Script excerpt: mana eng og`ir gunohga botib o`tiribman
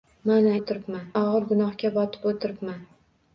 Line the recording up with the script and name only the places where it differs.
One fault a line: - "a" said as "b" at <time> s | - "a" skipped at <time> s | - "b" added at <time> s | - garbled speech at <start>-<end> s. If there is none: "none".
- "eng" said as "o`tiribman" at 0.6 s